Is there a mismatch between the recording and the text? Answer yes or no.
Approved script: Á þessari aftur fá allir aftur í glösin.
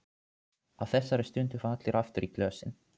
yes